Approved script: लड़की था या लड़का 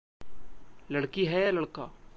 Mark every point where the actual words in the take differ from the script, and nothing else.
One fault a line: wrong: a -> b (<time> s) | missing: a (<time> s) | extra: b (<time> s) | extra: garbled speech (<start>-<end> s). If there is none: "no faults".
wrong: था -> है (1.2 s)